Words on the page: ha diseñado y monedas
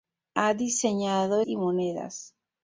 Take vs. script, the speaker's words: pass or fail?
pass